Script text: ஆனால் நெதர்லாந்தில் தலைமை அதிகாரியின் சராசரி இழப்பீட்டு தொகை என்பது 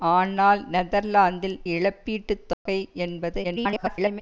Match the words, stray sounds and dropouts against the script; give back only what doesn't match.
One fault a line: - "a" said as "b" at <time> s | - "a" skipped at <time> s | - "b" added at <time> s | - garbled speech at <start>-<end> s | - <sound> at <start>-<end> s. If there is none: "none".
- "தலைமை அதிகாரியின் சராசரி" skipped at 1.6 s
- dropout at 2.5-2.7 s
- garbled speech at 3.4-4.2 s